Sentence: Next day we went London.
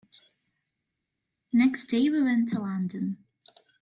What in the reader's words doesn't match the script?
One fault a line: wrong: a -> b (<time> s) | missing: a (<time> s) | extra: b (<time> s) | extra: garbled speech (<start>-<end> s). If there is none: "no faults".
extra: to (2.5 s)